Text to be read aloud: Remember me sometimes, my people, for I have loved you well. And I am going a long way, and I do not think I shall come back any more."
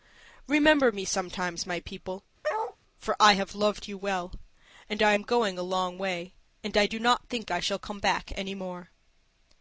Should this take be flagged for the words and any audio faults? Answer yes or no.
yes